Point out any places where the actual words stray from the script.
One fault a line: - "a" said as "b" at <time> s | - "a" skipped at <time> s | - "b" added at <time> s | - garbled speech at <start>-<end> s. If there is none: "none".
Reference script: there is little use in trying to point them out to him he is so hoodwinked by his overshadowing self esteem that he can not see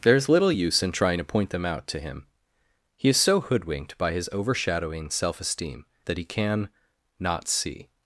none